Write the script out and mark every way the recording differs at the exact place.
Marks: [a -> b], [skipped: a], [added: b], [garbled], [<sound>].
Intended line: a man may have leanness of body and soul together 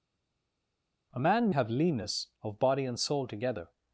a man [skipped: may] have leanness of body and soul together